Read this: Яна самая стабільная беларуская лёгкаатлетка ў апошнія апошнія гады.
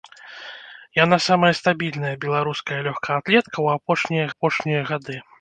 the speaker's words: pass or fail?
pass